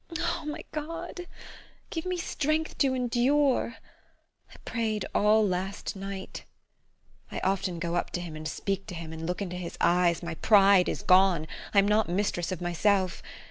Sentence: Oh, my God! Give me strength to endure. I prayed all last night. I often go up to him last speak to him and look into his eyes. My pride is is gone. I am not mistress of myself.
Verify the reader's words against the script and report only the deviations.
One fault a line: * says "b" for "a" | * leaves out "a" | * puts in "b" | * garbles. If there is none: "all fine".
* says "and" for "last"
* leaves out "is"